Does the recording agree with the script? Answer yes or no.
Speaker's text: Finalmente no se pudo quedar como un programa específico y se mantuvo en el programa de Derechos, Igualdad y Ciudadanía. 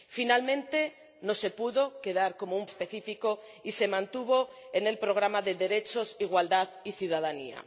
no